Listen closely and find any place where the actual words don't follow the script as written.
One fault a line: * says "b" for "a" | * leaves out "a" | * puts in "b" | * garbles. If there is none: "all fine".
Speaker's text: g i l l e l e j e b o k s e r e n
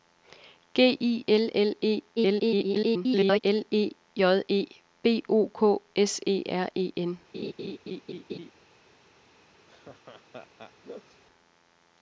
* garbles